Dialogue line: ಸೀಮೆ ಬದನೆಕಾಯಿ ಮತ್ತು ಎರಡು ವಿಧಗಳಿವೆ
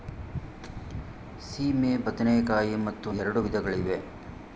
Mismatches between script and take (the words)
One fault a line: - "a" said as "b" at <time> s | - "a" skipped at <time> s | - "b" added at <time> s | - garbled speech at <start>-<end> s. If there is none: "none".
none